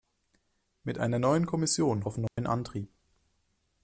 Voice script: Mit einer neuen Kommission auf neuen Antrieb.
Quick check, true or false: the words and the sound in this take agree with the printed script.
false